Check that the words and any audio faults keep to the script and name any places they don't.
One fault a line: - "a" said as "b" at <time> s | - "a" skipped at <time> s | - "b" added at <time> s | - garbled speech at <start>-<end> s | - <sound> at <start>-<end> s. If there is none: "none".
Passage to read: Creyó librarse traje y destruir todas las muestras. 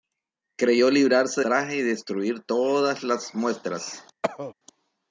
- cough at 4.2-4.5 s